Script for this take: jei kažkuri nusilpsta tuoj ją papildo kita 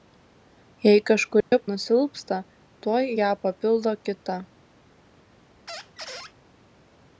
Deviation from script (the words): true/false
false